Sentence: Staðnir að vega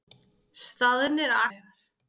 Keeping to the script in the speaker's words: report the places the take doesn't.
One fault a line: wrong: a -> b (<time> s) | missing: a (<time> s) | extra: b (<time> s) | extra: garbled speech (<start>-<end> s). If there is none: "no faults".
no faults